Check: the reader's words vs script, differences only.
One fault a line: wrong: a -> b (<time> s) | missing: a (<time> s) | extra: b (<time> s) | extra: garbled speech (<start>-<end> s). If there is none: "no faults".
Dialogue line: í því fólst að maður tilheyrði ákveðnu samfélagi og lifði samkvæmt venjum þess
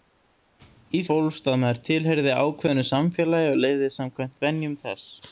missing: því (1.0 s)